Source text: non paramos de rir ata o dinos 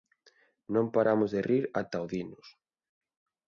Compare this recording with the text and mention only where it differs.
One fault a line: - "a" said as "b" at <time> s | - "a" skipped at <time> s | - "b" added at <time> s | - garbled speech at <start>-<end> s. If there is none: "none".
none